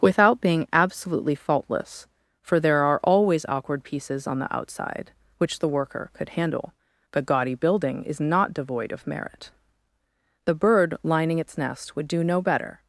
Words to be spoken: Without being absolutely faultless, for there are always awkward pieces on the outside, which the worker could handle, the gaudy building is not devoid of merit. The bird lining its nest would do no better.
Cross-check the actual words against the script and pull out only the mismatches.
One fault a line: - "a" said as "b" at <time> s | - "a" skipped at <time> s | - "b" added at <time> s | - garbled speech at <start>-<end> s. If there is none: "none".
none